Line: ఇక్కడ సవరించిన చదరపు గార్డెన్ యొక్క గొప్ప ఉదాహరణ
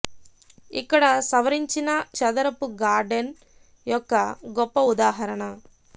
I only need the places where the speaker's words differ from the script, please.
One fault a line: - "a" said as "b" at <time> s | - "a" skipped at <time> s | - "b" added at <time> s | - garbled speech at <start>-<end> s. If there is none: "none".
none